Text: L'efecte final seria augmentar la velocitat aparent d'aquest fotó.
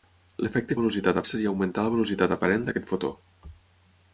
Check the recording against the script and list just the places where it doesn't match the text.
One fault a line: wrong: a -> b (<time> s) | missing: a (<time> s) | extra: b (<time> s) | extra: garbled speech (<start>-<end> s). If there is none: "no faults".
wrong: final -> velocitat (0.8 s)